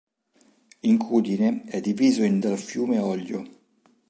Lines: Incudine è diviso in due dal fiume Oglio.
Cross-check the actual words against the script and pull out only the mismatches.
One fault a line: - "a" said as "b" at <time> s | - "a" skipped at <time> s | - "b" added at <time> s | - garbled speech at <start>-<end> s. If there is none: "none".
- "due" skipped at 2.4 s